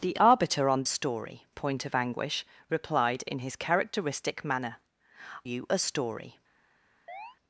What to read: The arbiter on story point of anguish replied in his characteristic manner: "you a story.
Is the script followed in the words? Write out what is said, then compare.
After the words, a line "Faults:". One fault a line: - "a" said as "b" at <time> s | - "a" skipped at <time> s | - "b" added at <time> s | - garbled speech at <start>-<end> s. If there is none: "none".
The arbiter on story point of anguish replied in his characteristic manner: "you a story.
Faults:
none